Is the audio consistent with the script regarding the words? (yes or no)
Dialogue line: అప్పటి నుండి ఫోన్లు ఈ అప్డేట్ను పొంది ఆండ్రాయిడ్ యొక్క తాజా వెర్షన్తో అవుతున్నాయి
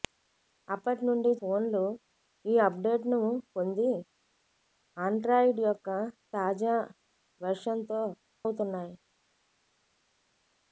yes